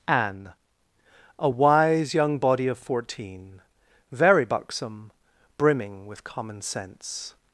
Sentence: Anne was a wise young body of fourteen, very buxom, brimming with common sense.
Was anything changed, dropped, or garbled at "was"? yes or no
yes